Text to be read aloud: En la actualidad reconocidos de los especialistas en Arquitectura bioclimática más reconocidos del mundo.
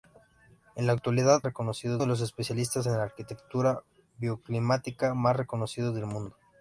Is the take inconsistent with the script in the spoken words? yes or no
no